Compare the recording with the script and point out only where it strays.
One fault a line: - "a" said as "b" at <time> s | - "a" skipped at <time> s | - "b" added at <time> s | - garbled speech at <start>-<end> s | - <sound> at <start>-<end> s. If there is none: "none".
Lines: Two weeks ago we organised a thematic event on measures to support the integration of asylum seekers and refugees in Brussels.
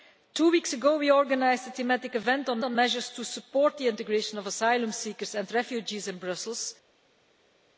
- "on" added at 2.6 s